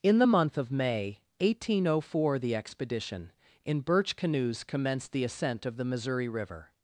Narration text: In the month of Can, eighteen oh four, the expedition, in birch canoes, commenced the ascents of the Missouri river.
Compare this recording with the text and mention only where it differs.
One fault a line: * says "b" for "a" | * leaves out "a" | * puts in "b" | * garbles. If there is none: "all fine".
* says "May" for "Can"
* says "ascent" for "ascents"